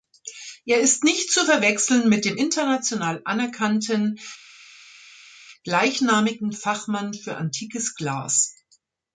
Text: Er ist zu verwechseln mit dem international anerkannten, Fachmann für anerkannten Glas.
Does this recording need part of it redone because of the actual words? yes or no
yes